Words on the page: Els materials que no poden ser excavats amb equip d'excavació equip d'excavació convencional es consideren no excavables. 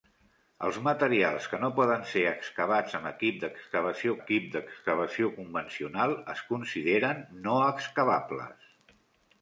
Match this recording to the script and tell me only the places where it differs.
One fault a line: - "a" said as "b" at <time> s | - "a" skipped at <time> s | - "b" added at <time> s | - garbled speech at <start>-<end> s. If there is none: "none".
none